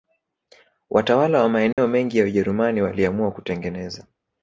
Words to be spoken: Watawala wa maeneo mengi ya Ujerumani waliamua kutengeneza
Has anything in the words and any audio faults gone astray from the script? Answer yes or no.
yes